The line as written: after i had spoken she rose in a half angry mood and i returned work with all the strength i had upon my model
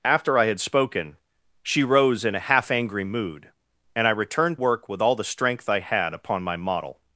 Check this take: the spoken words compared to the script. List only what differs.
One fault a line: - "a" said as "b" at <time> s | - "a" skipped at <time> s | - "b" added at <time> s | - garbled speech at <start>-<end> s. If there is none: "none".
none